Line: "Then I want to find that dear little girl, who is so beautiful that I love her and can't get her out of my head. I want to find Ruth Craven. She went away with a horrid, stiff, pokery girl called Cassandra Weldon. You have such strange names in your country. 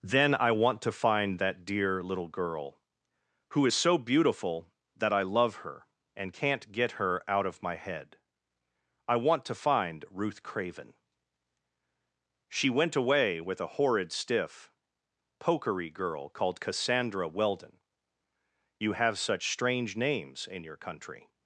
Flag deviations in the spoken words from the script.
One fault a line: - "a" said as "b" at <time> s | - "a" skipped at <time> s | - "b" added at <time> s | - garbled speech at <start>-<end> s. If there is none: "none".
none